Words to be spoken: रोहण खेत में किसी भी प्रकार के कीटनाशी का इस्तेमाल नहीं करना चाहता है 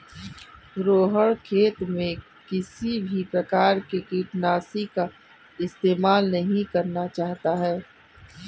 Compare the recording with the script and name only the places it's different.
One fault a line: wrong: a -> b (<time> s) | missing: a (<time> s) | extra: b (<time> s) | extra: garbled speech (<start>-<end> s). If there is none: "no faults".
no faults